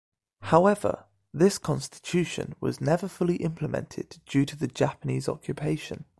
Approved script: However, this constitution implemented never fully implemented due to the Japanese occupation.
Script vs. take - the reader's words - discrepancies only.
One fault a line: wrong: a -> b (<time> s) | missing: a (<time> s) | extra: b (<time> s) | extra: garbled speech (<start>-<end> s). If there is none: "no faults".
wrong: implemented -> was (2.6 s)